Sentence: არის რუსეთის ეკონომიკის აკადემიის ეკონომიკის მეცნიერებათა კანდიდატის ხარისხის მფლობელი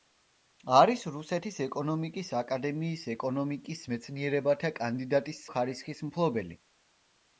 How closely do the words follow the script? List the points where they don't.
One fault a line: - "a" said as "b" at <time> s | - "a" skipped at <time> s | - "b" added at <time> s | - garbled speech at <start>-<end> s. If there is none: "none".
none